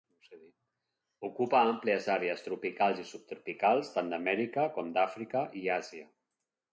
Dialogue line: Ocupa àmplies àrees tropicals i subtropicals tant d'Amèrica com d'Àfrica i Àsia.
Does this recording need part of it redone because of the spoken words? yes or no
no